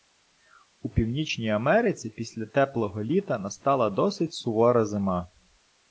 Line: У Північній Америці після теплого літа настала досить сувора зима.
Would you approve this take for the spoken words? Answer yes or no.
yes